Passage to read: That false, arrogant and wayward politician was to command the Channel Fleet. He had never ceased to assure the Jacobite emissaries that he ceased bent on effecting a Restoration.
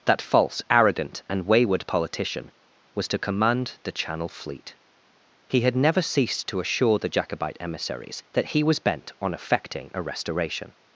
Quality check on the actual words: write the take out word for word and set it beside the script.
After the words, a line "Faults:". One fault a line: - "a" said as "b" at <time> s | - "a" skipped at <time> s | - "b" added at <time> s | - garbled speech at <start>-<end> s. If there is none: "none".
That false, arrogant and wayward politician was to command the Channel Fleet. He had never ceased to assure the Jacobite emissaries that he was bent on effecting a Restoration.
Faults:
- "ceased" said as "was" at 8.6 s